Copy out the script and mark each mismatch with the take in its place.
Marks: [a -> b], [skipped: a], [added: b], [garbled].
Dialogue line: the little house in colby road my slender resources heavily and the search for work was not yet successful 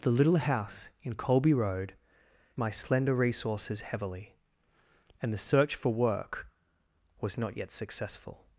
the little house in colby road my slender resources heavily and the search for work was not yet successful